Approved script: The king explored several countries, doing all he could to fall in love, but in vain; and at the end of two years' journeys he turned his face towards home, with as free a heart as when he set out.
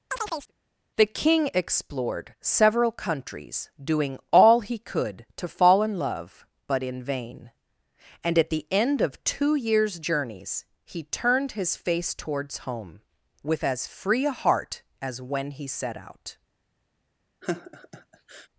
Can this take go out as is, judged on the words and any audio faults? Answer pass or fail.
fail